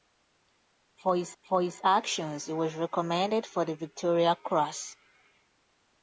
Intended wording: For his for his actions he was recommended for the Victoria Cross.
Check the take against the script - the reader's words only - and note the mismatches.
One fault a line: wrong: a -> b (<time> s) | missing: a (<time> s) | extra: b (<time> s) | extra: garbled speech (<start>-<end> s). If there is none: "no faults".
no faults